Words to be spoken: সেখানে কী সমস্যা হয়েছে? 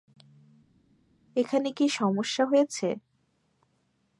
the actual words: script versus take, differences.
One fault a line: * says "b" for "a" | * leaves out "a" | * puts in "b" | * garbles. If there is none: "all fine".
* says "এখানে" for "সেখানে"